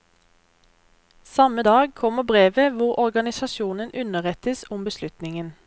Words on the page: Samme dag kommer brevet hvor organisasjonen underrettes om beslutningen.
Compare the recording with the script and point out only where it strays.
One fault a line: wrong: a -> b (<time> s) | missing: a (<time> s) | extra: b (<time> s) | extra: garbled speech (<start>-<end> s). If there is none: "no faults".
no faults